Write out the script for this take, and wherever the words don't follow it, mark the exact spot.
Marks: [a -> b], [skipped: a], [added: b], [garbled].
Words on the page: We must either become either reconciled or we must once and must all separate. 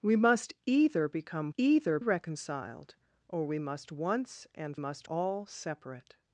We must either become either reconciled or we must once and must all separate.